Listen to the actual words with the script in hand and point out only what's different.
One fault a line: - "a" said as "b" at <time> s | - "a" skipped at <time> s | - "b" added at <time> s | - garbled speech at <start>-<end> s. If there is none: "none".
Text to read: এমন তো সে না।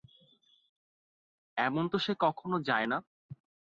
- "কখনো যায়" added at 2.2 s